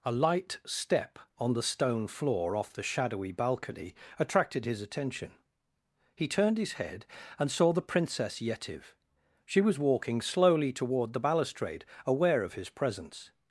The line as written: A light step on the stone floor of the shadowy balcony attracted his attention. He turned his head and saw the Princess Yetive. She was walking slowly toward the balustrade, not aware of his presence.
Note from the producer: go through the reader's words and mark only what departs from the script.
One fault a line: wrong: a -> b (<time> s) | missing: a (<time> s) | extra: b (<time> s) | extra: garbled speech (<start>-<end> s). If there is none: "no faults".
wrong: of -> off (2.5 s)
missing: not (11.8 s)